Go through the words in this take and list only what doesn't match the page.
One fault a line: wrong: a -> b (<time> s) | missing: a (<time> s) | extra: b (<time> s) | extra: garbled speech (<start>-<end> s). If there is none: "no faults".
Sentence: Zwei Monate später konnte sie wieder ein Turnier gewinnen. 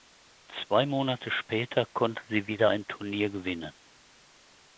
no faults